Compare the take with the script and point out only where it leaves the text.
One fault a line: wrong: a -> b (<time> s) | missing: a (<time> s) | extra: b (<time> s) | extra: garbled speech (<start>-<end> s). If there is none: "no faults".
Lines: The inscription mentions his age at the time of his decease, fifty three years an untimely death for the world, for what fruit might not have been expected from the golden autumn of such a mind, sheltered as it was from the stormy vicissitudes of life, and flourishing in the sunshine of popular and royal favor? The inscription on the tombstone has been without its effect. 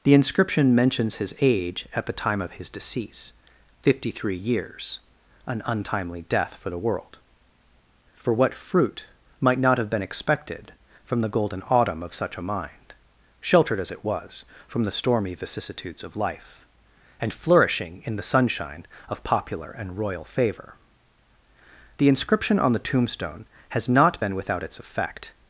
extra: not (23.9 s)